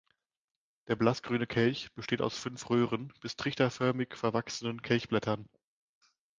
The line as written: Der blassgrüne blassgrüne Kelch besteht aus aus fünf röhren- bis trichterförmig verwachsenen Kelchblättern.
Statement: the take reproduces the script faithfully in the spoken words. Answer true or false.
false